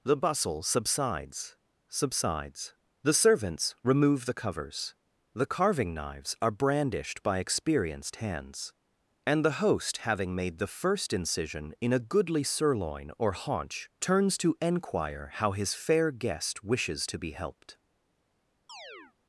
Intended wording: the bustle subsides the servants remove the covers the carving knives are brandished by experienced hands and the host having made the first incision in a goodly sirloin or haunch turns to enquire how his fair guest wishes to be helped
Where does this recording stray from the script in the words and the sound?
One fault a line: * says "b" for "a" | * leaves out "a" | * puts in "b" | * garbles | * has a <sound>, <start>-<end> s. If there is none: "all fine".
* puts in "subsides"
* has a chirp, 18.7-19.1 s